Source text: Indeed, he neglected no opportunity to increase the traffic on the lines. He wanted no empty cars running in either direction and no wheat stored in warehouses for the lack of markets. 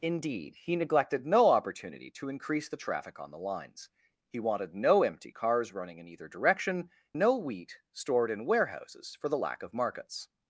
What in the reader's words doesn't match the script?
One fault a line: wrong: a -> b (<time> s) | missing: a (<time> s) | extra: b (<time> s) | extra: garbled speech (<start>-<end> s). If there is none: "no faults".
missing: and (6.9 s)